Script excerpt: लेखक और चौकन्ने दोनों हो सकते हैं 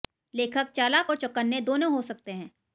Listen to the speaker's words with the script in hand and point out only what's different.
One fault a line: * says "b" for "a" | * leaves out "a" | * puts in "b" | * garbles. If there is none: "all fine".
* puts in "चालाक"